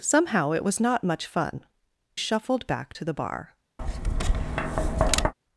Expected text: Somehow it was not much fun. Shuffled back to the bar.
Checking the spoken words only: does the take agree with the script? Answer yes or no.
yes